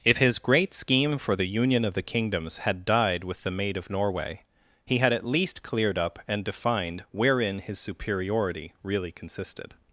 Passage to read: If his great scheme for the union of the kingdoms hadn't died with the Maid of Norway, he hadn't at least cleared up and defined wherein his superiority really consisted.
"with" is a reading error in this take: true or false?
false